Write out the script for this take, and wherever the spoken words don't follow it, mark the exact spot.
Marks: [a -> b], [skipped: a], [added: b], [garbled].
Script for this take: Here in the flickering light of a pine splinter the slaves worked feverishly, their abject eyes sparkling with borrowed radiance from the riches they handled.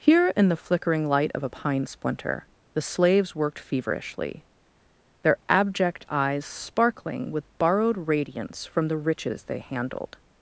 Here in the flickering light of a pine splinter the slaves worked feverishly, their abject eyes sparkling with borrowed radiance from the riches they handled.